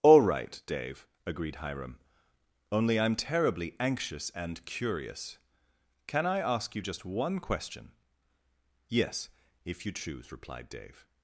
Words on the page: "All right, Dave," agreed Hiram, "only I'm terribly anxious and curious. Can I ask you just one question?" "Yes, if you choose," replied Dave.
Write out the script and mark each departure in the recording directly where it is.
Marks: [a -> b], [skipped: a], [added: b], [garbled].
"All right, Dave," agreed Hiram, "only I'm terribly anxious and curious. Can I ask you just one question?" "Yes, if you choose," replied Dave.